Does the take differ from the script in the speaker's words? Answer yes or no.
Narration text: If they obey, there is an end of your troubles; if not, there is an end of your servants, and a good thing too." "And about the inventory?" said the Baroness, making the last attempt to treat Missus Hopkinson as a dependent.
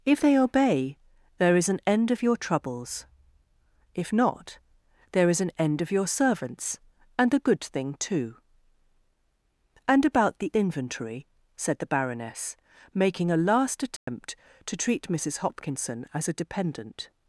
yes